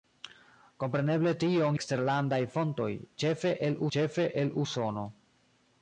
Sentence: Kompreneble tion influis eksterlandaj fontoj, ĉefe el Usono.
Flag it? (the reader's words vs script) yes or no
yes